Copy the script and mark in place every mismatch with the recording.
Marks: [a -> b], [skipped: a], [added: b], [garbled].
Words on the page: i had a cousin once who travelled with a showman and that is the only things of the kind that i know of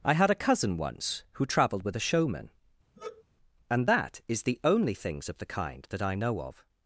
i had a cousin once who travelled with a showman and that is the only things of the kind that i know of